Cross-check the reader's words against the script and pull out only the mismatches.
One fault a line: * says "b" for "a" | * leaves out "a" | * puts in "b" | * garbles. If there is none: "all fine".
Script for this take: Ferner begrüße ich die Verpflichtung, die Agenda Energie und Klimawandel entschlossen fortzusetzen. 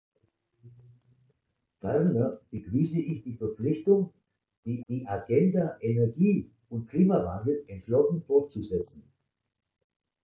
* puts in "die"